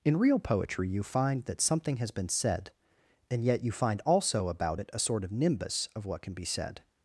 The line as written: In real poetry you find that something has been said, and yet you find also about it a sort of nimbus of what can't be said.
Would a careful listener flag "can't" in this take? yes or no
yes